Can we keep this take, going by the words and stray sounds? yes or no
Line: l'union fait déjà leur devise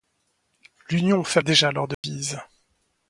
no